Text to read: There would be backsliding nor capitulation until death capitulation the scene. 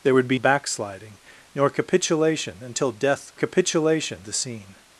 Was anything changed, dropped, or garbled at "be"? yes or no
no